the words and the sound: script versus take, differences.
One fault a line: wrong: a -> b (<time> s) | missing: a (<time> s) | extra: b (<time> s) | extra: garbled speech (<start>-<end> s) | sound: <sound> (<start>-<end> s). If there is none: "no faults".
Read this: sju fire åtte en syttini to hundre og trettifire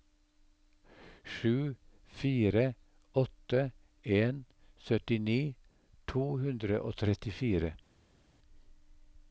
no faults